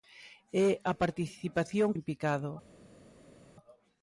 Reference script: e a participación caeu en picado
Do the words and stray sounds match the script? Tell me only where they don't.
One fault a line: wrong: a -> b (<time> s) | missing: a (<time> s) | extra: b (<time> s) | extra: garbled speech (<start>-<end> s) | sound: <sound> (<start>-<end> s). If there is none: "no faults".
missing: caeu (1.9 s)